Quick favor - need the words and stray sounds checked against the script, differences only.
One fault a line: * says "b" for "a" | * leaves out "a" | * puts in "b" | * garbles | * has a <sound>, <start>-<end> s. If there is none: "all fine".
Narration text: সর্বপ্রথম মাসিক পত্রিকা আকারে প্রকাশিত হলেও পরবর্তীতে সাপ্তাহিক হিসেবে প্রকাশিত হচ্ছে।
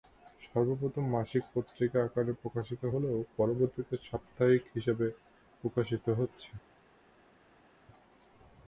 all fine